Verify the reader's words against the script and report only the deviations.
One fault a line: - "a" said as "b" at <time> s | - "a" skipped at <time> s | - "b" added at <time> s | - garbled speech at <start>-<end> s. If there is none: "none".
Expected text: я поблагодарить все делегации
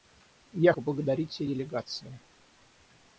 none